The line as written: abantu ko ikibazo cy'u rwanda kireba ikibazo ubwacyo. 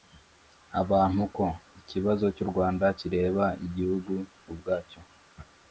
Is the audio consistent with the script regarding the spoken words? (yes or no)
no